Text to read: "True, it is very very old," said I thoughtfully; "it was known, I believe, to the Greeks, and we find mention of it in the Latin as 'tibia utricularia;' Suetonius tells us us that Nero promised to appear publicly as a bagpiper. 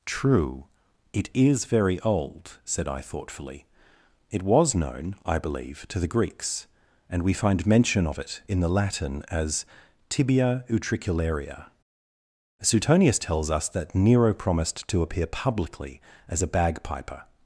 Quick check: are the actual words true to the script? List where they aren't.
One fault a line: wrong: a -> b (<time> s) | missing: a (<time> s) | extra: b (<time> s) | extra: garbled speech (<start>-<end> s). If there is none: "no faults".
missing: very (2.0 s)
missing: us (13.7 s)